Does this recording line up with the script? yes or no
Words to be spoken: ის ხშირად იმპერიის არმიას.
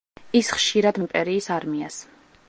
yes